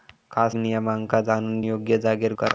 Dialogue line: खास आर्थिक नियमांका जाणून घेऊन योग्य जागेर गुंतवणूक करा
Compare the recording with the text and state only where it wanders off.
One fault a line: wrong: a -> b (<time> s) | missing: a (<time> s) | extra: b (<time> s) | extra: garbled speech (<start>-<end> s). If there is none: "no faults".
missing: आर्थिक (0.6 s)
missing: घेऊन (1.6 s)
missing: गुंतवणूक (2.3 s)